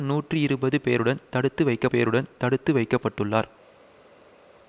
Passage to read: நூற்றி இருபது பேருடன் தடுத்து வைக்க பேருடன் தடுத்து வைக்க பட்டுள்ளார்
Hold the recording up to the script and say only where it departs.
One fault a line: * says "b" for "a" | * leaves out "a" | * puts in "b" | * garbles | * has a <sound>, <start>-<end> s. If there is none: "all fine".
all fine